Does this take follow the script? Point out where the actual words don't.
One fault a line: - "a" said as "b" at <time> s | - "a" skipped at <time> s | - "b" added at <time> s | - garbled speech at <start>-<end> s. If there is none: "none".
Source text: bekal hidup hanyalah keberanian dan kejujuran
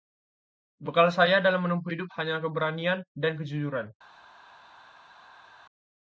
- "saya dalam menempuh" added at 1.1 s